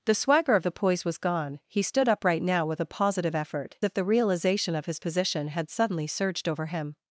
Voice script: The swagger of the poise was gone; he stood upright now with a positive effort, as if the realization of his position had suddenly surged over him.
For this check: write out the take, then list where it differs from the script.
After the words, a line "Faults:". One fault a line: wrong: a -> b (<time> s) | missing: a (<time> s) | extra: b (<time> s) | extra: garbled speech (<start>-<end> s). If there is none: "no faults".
The swagger of the poise was gone; he stood upright now with a positive effort, if the realization of his position had suddenly surged over him.
Faults:
missing: as (3.8 s)